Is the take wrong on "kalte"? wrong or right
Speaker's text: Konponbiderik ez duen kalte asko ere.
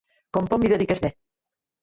wrong